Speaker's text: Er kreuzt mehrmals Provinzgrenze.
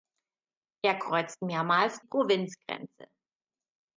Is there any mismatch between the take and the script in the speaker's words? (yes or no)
no